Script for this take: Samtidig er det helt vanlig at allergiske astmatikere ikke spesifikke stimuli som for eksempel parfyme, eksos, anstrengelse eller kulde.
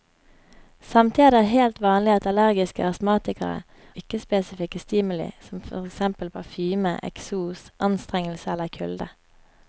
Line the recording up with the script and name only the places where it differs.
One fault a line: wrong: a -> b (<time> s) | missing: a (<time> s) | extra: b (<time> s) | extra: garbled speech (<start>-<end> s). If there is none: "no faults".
no faults